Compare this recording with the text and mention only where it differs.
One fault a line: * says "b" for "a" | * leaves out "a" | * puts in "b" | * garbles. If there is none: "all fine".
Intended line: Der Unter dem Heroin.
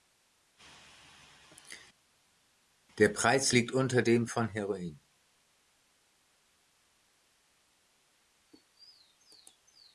* puts in "Preis liegt"
* puts in "von"